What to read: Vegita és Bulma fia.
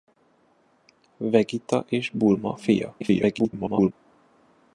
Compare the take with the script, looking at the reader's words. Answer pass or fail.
fail